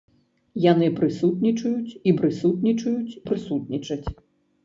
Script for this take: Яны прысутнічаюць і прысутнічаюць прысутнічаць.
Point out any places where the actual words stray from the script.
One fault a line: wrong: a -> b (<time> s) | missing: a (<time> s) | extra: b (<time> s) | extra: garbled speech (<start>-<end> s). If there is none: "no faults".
no faults